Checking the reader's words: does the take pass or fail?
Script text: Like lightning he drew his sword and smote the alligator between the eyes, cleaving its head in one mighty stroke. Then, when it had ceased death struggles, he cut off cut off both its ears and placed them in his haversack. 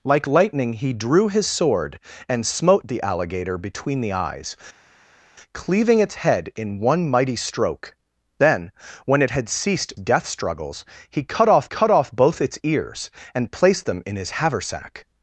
pass